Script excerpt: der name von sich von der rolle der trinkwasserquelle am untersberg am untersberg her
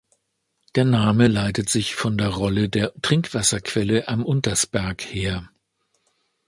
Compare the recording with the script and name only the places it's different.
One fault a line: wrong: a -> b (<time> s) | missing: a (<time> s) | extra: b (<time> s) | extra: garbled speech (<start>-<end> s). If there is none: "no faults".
wrong: von -> leitet (1.3 s)
missing: am untersberg (5.0 s)